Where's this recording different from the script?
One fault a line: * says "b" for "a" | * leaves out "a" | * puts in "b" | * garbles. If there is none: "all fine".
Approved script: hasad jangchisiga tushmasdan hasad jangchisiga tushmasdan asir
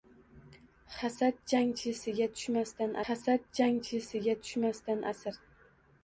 all fine